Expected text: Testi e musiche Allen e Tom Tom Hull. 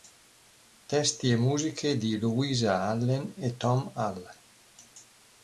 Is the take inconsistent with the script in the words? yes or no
yes